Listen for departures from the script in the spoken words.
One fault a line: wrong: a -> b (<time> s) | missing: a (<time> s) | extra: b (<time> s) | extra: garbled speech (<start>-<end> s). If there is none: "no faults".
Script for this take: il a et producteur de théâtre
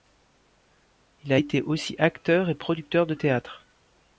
extra: été aussi acteur (1.3 s)